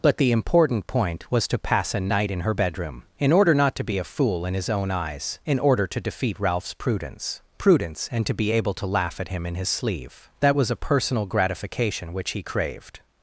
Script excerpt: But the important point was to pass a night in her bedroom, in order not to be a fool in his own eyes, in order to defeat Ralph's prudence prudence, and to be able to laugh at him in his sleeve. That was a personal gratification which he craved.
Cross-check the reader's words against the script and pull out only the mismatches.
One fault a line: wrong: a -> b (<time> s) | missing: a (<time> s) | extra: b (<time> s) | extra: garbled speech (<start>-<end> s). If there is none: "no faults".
no faults